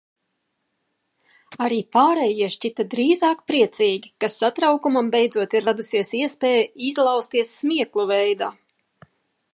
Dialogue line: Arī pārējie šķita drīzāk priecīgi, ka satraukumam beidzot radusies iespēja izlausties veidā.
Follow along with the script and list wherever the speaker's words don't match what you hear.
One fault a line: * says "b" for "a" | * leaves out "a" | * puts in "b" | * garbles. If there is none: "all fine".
* puts in "ir"
* puts in "smieklu"